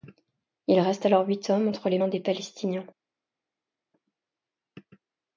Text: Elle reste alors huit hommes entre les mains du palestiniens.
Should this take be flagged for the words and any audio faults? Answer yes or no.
yes